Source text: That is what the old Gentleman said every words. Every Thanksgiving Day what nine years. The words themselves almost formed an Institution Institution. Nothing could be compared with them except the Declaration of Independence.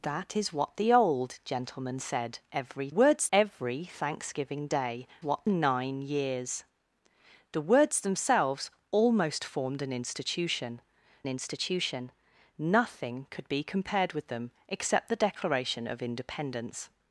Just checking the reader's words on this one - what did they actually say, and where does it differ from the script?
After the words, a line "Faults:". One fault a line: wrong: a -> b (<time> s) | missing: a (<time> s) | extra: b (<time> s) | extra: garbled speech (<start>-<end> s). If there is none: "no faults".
That is what the old Gentleman said every words. Every Thanksgiving Day what nine years. The words themselves almost formed an Institution Institution. Nothing could be compared with them except the Declaration of Independence.
Faults:
no faults